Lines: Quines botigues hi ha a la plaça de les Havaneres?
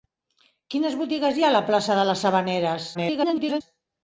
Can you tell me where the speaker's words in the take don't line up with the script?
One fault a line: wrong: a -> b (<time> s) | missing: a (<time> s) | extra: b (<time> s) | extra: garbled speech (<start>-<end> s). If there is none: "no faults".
extra: garbled speech (2.9-3.6 s)